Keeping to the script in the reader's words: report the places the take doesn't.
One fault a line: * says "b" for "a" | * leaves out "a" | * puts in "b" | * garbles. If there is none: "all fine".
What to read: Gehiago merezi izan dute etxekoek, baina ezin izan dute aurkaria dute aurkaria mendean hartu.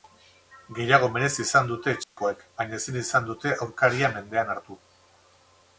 * leaves out "dute aurkaria"